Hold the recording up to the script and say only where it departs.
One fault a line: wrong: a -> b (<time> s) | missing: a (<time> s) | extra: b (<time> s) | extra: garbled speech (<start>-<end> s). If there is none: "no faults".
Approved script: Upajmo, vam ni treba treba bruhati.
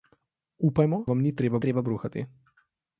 no faults